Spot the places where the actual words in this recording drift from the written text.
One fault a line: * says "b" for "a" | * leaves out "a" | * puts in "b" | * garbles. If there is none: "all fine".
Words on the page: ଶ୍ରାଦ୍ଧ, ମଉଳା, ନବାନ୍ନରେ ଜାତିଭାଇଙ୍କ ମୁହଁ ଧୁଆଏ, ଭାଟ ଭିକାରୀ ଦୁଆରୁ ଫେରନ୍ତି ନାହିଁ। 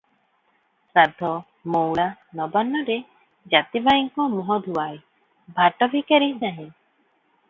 * leaves out "ଦୁଆରୁ ଫେରନ୍ତି"